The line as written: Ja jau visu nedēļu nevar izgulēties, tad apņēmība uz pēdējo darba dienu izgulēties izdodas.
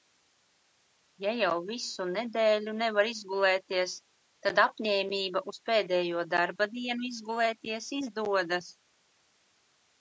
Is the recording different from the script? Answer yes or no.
no